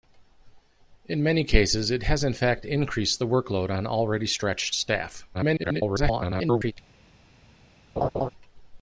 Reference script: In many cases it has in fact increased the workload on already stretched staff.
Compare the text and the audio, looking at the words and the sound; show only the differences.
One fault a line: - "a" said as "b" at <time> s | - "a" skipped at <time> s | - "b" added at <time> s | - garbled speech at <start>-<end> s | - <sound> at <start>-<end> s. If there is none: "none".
- garbled speech at 5.3-6.7 s
- laugh at 8.0-8.3 s